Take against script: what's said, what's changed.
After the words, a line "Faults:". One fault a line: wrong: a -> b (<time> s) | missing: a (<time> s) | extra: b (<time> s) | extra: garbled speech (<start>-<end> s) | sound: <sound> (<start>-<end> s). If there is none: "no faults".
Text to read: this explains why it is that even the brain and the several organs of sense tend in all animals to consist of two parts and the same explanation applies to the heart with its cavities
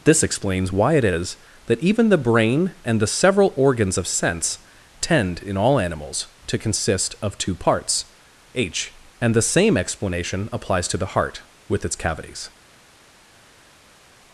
this explains why it is that even the brain and the several organs of sense tend in all animals to consist of two parts h and the same explanation applies to the heart with its cavities
Faults:
extra: h (8.5 s)